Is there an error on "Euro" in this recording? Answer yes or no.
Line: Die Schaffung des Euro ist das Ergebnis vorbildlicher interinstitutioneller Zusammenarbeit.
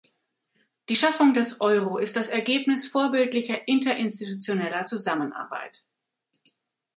no